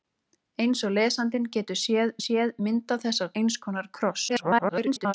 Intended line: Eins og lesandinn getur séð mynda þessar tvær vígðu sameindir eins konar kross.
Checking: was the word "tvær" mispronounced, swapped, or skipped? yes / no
yes